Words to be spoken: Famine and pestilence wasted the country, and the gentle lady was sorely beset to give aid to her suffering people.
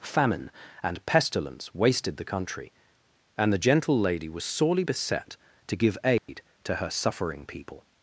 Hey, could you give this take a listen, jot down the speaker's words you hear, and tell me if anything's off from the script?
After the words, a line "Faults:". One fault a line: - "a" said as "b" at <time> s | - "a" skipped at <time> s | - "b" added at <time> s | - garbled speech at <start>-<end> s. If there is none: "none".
Famine and pestilence wasted the country, and the gentle lady was sorely beset to give aid to her suffering people.
Faults:
none